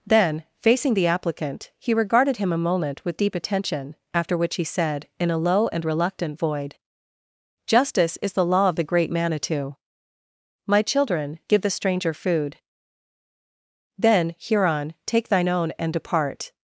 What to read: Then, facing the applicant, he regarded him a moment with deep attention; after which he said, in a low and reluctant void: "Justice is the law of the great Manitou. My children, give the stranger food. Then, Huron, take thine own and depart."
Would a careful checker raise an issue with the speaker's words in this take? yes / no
no